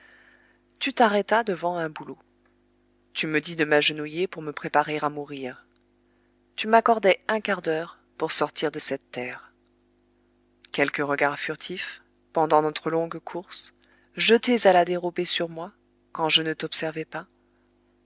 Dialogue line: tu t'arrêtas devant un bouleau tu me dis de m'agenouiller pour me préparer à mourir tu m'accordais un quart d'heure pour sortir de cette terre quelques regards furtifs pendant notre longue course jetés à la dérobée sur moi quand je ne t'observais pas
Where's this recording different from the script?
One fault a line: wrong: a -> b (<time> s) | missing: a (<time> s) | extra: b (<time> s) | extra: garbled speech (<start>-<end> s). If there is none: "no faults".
no faults